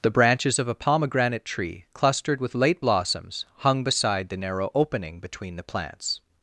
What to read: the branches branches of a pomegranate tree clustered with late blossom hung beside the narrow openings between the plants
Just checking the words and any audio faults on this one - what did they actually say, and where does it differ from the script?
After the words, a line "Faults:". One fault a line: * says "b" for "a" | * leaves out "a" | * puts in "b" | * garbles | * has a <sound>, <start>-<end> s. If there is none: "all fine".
the branches of a pomegranate tree clustered with late blossoms hung beside the narrow opening between the plants
Faults:
* leaves out "branches"
* says "blossoms" for "blossom"
* says "opening" for "openings"